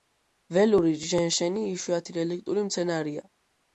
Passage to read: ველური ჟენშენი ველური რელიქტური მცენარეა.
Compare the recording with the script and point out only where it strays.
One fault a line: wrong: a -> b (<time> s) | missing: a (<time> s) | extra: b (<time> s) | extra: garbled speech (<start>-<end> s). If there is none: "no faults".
wrong: ველური -> იშვიათი (1.7 s)